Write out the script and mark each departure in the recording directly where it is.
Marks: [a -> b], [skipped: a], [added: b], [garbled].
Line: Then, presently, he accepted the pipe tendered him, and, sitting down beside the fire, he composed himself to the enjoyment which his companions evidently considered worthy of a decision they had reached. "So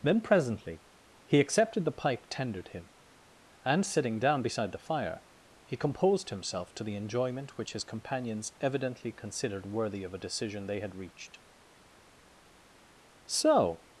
Then, presently, he accepted the pipe tendered him, and, sitting down beside the fire, he composed himself to the enjoyment which his companions evidently considered worthy of a decision they had reached. "So